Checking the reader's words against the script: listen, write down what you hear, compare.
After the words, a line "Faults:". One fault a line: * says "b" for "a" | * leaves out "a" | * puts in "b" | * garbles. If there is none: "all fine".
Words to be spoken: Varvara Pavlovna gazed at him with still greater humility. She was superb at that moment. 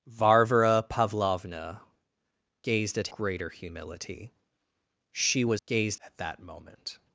Varvara Pavlovna gazed at greater humility. She was gazed at that moment.
Faults:
* leaves out "him with still"
* says "gazed" for "superb"